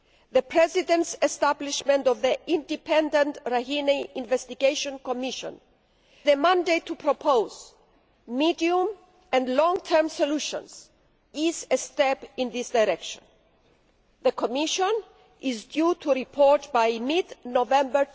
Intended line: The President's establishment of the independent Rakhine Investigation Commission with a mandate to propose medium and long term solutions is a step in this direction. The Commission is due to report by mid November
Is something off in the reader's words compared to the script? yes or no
yes